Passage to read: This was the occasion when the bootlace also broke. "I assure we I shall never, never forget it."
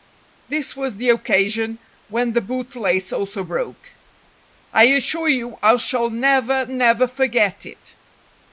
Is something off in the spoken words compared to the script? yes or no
yes